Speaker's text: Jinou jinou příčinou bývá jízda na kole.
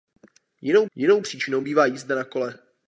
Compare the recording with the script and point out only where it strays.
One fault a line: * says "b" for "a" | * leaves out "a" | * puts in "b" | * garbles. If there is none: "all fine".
all fine